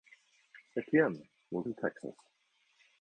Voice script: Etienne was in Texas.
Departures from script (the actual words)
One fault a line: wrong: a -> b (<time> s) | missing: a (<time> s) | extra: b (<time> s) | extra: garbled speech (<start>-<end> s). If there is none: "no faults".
no faults